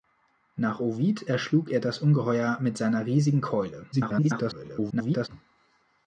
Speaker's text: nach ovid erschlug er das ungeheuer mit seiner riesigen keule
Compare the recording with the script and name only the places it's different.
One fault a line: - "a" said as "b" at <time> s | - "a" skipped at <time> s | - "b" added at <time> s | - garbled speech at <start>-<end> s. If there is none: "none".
- garbled speech at 3.9-5.3 s